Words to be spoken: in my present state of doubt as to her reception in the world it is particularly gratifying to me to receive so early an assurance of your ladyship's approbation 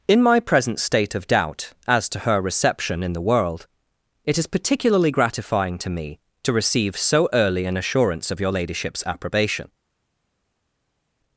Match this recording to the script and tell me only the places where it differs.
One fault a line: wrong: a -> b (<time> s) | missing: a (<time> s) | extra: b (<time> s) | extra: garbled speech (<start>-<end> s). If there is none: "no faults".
no faults